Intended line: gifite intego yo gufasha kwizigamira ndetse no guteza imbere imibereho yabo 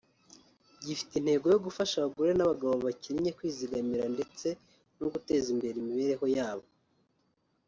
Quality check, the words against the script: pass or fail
fail